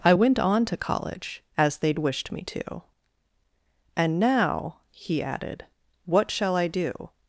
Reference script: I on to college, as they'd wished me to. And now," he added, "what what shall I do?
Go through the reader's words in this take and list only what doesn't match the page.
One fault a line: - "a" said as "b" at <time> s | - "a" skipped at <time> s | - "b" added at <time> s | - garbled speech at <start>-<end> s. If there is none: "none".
- "went" added at 0.1 s
- "what" skipped at 6.3 s